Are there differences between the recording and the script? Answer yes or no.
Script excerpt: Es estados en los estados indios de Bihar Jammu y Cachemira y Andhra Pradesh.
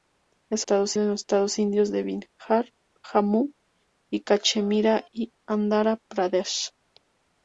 no